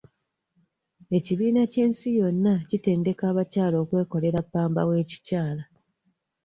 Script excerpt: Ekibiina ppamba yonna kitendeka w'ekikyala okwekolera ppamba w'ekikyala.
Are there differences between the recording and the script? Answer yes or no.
yes